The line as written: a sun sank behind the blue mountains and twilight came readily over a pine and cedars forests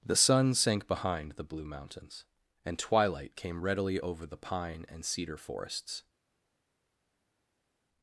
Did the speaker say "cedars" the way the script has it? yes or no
no